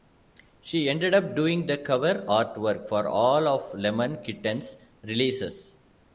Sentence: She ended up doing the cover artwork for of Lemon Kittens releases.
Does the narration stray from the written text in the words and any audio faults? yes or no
yes